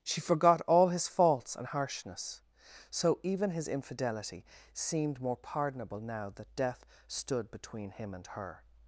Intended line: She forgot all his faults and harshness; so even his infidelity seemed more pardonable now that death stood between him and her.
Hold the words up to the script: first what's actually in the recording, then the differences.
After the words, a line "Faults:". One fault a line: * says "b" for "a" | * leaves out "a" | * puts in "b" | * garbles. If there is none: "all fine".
She forgot all his faults and harshness; so even his infidelity seemed more pardonable now that death stood between him and her.
Faults:
all fine